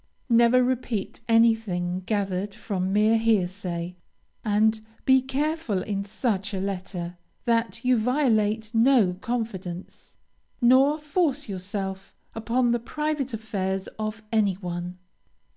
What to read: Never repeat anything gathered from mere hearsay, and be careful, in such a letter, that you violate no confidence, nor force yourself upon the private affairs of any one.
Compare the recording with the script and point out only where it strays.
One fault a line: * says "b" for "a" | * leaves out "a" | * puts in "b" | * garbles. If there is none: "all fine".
all fine